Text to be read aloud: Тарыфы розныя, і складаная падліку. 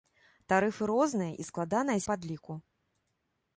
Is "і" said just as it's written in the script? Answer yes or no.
yes